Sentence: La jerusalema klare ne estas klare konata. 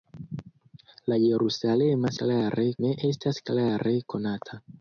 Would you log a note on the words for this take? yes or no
no